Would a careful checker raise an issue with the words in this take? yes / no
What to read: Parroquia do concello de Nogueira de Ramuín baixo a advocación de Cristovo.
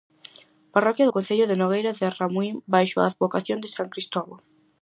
yes